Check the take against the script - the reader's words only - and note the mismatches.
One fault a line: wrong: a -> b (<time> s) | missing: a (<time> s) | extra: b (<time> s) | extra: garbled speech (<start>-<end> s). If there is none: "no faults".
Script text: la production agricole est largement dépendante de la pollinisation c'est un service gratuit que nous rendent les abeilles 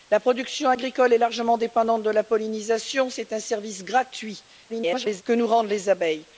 extra: garbled speech (4.7-5.2 s)